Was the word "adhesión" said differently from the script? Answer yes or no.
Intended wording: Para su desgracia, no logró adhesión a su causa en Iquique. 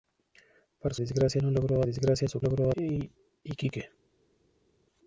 yes